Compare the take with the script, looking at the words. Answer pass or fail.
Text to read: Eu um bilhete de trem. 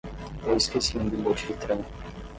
fail